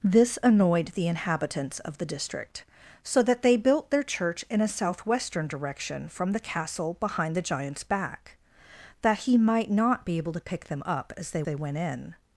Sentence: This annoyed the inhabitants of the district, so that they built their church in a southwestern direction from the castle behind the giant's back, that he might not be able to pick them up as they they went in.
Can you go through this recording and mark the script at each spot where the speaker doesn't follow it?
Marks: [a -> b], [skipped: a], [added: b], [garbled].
This annoyed the inhabitants of the district, so that they built their church in a southwestern direction from the castle behind the giant's back, that he might not be able to pick them up as they they went in.